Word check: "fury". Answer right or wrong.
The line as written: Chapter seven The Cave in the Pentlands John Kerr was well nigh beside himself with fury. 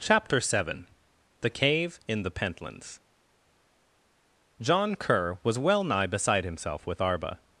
wrong